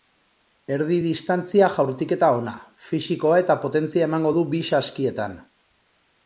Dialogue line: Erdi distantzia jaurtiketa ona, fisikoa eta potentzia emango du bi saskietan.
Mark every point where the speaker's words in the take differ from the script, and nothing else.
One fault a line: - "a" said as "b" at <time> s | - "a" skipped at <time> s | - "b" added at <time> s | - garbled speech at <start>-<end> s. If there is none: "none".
none